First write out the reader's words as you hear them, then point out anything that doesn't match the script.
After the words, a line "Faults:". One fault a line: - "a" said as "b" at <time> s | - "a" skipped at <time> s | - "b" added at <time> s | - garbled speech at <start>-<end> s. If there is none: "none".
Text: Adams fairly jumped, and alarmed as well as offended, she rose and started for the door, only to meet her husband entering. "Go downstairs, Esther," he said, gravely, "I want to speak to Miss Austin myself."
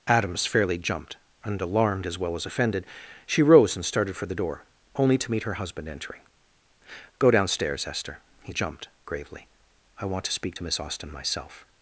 Adams fairly jumped, and alarmed as well as offended, she rose and started for the door, only to meet her husband entering. "Go downstairs, Esther," he jumped, gravely, "I want to speak to Miss Austin myself."
Faults:
- "said" said as "jumped" at 8.5 s